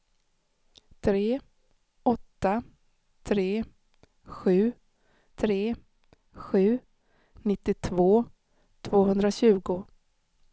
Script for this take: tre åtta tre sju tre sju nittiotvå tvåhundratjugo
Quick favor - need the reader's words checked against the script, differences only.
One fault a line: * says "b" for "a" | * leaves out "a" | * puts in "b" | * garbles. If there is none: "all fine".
all fine